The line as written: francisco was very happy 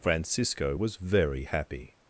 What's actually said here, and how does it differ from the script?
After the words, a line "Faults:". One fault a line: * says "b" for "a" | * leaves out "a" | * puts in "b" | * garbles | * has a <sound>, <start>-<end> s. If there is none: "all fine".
francisco was very happy
Faults:
all fine